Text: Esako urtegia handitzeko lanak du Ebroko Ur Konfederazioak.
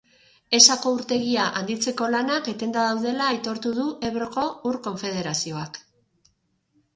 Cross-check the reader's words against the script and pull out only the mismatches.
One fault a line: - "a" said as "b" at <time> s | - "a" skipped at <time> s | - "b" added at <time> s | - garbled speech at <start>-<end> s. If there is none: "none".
- "etenda daudela aitortu" added at 2.5 s